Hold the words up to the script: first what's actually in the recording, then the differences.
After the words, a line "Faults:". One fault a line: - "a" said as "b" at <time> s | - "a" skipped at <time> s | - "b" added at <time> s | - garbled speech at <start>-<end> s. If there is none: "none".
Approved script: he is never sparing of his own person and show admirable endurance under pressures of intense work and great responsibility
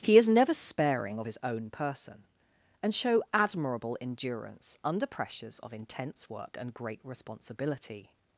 he is never sparing of his own person and show admirable endurance under pressures of intense work and great responsibility
Faults:
none